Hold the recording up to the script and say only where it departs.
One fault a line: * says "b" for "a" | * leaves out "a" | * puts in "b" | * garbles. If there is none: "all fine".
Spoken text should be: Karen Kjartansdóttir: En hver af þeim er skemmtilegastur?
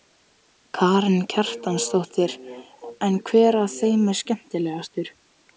all fine